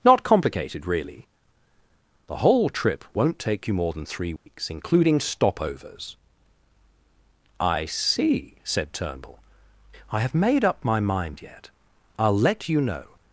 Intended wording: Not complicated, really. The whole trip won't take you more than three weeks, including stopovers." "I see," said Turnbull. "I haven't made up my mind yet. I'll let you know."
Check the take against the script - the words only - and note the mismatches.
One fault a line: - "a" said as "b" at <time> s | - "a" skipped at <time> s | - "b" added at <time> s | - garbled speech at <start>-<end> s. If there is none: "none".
- "haven't" said as "have" at 10.2 s